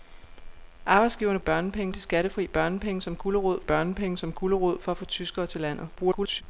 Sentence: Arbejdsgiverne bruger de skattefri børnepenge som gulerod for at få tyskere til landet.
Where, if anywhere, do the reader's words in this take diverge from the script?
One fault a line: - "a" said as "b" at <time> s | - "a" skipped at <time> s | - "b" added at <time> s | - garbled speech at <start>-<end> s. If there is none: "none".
- "bruger" said as "børnepenge" at 1.4 s
- "børnepenge som gulerod" added at 3.6 s
- garbled speech at 6.0-6.4 s